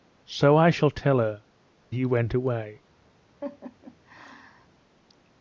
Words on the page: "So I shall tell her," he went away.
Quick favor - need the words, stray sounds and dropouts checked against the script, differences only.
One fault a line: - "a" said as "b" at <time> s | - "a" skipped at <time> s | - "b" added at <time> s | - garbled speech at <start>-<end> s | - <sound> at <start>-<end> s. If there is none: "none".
- laugh at 3.4-4.7 s